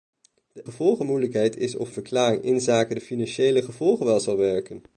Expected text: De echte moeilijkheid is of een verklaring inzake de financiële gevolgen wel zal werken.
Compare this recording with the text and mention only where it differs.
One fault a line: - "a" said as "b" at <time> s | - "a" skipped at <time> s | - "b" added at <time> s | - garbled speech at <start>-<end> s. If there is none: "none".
- "echte" said as "gevolgen" at 0.6 s
- "een" skipped at 1.9 s